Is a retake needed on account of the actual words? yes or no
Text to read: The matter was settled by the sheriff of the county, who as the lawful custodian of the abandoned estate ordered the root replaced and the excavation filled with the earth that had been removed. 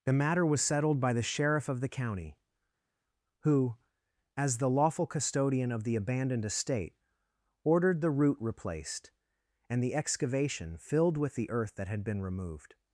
no